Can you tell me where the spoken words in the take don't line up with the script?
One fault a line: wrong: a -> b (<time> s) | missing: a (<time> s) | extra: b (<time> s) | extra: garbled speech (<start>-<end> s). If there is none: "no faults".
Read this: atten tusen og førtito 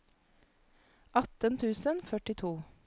no faults